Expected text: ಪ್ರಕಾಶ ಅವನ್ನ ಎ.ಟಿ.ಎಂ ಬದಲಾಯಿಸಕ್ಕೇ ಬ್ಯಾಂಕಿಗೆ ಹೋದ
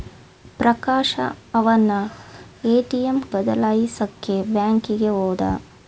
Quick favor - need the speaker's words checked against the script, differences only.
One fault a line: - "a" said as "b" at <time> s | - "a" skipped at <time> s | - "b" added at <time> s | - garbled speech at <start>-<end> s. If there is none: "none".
none